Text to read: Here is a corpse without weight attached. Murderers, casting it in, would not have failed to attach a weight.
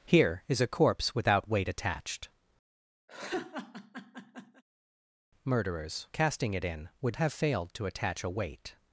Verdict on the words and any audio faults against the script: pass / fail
fail